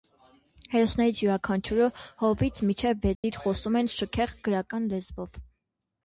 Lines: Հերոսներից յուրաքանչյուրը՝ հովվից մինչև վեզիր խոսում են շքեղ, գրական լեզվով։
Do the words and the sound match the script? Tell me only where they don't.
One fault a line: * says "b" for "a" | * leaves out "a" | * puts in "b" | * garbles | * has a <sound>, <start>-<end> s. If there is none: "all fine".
* has a dropout, 3.1-3.2 s